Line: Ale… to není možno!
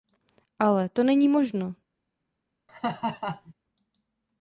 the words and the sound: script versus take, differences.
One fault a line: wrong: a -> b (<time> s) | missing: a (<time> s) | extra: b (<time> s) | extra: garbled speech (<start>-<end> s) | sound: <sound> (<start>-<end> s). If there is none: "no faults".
sound: laugh (2.7-3.5 s)